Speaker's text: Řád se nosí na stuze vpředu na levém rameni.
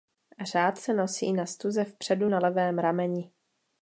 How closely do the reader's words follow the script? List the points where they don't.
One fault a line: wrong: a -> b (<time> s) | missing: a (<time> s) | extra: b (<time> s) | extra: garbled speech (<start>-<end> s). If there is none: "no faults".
no faults